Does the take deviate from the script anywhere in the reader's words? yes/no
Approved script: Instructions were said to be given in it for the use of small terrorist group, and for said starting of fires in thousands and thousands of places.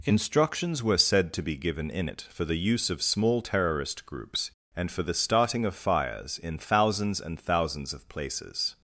yes